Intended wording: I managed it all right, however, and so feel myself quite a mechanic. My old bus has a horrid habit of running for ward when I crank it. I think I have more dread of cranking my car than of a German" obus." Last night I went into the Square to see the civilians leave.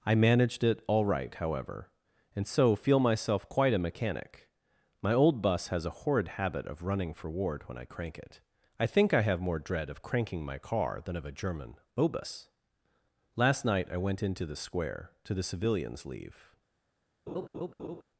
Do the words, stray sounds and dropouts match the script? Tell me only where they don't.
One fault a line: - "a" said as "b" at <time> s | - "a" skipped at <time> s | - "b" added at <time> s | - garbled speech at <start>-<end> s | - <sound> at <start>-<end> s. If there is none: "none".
- "see" skipped at 15.3 s
- laugh at 17.3-18.0 s